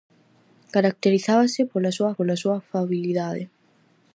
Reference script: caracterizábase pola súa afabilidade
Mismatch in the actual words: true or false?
true